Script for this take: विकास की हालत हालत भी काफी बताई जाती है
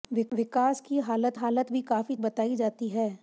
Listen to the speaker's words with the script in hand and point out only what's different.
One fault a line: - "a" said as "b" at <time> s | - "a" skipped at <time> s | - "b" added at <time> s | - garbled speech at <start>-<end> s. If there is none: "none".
none